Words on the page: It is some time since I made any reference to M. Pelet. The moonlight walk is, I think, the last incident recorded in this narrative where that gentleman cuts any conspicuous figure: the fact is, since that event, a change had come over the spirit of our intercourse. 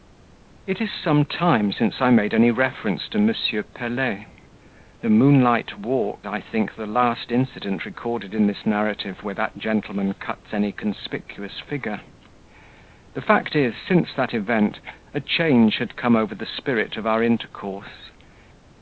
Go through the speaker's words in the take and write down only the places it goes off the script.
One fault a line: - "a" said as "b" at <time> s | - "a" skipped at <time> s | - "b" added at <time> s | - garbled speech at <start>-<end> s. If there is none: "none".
- "is" skipped at 6.3 s